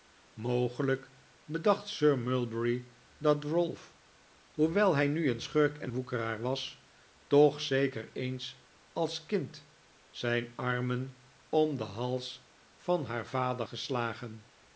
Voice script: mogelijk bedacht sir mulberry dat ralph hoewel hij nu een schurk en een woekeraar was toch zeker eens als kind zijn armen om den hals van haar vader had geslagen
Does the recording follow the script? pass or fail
fail